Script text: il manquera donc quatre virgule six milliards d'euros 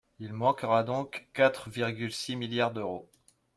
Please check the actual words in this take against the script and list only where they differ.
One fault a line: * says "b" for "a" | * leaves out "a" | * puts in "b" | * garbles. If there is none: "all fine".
all fine